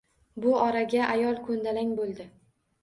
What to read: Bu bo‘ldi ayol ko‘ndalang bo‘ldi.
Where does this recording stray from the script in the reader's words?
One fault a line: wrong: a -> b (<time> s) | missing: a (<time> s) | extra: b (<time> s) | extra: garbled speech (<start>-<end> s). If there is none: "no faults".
wrong: bo‘ldi -> oraga (0.6 s)